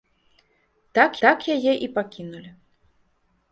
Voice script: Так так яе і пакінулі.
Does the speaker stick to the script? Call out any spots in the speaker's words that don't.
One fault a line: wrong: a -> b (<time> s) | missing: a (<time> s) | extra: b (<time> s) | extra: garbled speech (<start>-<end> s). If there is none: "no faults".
no faults